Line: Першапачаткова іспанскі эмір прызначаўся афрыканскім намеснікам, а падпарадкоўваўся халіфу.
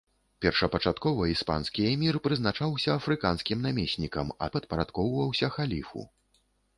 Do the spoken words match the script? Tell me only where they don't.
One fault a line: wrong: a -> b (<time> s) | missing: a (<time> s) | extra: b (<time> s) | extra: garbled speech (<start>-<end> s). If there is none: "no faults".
no faults